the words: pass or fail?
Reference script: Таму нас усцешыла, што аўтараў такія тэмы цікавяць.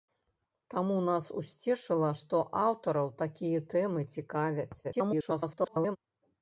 fail